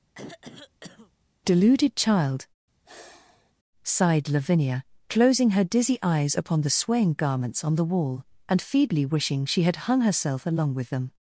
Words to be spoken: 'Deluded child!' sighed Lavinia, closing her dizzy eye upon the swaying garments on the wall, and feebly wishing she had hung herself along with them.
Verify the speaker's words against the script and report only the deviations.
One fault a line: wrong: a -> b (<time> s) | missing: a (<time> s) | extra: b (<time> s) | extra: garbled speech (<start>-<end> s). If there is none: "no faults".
wrong: eye -> eyes (6.0 s)